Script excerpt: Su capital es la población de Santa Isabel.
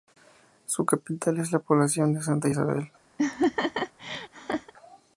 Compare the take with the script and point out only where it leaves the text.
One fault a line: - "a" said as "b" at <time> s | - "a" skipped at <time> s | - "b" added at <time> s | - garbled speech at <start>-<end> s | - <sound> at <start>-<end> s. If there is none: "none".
- laugh at 3.2-4.7 s